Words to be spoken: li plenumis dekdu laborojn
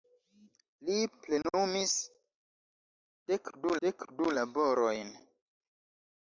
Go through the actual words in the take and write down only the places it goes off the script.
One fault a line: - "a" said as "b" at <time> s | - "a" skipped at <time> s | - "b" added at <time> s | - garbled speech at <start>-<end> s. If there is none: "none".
- "dekdu" added at 3.9 s